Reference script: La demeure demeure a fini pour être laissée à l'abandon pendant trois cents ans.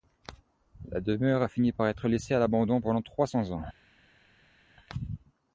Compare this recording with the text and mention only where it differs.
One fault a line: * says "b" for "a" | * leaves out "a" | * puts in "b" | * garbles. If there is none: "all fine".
* leaves out "demeure"
* says "par" for "pour"